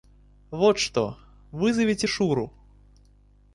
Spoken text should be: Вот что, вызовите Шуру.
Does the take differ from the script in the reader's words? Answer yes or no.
no